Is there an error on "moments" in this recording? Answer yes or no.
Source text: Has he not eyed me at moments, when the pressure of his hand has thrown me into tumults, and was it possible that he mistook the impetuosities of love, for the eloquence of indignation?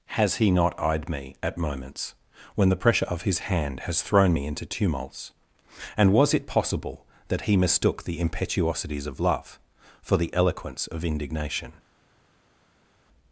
no